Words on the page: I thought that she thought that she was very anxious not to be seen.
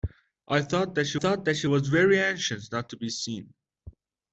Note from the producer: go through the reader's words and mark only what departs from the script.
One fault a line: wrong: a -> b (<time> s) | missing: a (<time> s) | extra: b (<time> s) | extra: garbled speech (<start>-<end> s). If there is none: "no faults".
no faults